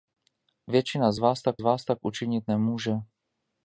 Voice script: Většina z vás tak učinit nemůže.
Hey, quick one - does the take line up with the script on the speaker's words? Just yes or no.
no